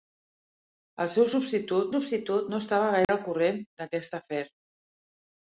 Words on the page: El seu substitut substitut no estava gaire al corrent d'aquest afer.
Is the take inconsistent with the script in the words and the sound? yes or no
yes